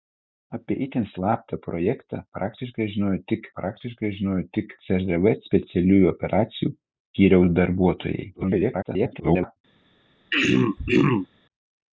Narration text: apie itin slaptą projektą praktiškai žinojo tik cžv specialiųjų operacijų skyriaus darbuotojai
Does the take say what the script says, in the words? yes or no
no